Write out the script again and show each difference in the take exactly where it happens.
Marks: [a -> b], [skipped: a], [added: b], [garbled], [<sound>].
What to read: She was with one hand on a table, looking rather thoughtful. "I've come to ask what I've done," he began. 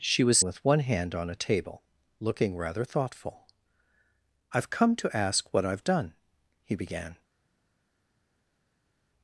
She was with one hand on a table, looking rather thoughtful. "I've come to ask what I've done," he began.